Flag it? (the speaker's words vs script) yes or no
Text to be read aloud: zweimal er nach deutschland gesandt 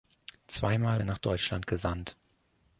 no